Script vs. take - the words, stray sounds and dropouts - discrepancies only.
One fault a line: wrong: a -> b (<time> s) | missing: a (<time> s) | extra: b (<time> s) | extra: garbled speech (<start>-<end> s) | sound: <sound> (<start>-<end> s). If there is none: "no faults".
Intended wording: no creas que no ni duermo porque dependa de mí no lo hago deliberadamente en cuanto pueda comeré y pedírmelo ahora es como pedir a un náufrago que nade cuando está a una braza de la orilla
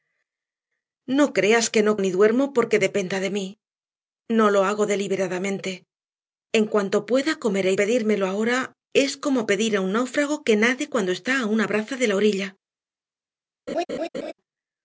sound: laugh (13.7-14.3 s)